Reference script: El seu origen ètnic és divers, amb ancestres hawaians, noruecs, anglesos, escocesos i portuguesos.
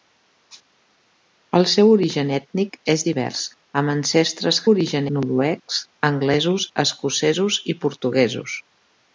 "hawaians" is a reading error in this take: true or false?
true